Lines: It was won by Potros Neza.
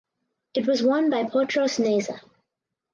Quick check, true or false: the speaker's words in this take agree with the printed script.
true